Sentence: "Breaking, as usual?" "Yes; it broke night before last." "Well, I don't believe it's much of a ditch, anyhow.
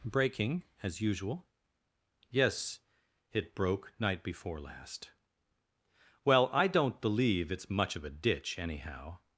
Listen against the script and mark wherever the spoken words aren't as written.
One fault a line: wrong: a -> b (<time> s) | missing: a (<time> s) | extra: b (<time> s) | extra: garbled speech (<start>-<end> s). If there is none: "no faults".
no faults